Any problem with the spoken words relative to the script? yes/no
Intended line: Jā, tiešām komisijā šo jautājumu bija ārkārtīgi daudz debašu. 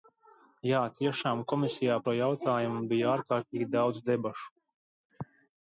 no